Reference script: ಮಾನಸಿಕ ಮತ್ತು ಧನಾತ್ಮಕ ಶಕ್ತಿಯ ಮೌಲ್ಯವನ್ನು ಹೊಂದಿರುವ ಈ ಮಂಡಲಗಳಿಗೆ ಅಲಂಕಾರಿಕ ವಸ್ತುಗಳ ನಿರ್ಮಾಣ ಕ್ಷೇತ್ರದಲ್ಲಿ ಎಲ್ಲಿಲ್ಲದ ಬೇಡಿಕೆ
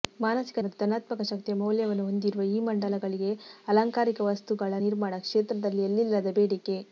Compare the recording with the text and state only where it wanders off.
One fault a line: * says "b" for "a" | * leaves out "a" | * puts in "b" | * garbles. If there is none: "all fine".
all fine